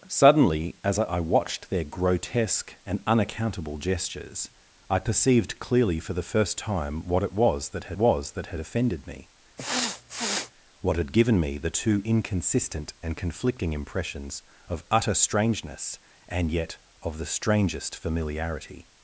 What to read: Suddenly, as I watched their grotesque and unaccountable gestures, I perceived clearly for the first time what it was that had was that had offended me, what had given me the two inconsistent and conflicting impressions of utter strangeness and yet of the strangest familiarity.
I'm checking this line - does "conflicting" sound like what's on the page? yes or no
yes